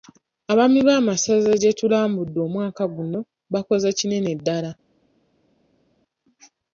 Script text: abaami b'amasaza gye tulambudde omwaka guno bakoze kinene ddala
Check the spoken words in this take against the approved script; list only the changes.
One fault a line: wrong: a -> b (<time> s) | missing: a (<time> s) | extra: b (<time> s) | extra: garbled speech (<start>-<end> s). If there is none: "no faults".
no faults